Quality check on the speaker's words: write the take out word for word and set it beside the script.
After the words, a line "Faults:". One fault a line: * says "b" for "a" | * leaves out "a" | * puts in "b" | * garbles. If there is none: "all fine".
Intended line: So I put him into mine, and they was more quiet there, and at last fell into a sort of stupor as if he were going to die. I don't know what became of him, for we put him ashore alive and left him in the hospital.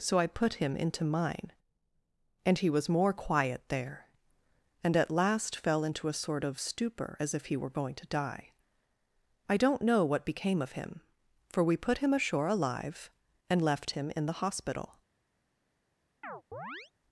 So I put him into mine, and he was more quiet there, and at last fell into a sort of stupor as if he were going to die. I don't know what became of him, for we put him ashore alive and left him in the hospital.
Faults:
* says "he" for "they"